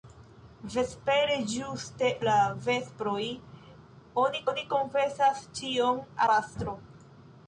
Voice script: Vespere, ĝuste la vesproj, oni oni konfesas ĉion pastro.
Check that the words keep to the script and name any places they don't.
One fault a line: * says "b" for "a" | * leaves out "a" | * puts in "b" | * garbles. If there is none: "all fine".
all fine